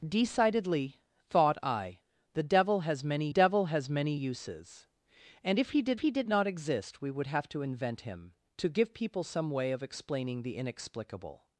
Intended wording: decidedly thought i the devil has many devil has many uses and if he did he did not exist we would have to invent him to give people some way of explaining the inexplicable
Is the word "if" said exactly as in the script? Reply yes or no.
yes